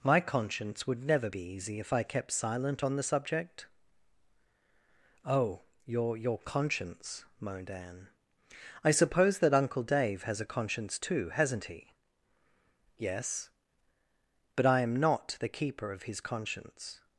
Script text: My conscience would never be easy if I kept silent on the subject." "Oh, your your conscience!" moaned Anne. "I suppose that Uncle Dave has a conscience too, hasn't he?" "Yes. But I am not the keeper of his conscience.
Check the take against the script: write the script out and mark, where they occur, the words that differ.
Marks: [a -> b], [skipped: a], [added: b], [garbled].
My conscience would never be easy if I kept silent on the subject." "Oh, your your conscience!" moaned Anne. "I suppose that Uncle Dave has a conscience too, hasn't he?" "Yes. But I am not the keeper of his conscience.